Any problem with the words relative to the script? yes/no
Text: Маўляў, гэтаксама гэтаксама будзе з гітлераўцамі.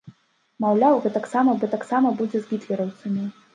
no